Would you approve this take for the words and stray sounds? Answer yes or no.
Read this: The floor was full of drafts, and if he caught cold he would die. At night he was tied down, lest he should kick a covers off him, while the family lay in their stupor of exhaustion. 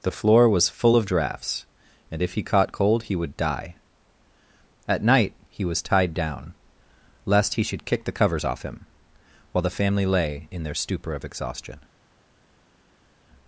no